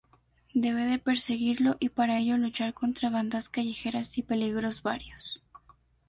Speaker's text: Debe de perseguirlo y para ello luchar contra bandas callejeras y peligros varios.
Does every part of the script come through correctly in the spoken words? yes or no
yes